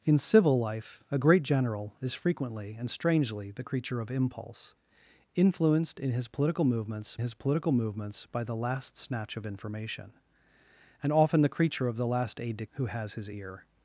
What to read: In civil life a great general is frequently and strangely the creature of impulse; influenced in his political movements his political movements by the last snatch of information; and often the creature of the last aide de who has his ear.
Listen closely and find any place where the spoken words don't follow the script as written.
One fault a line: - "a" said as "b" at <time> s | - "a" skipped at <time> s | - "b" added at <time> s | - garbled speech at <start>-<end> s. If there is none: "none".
none